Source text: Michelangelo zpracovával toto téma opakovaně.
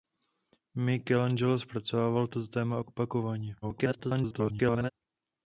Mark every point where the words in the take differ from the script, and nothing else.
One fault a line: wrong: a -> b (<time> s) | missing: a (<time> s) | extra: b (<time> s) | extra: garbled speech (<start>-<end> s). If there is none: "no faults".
extra: garbled speech (3.6-4.9 s)